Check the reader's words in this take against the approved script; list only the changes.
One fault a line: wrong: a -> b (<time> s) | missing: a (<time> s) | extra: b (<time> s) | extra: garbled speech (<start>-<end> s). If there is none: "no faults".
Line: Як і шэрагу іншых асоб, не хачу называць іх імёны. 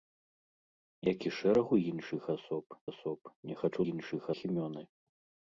extra: асоб (2.9 s)
wrong: называць -> іншых (3.9 s)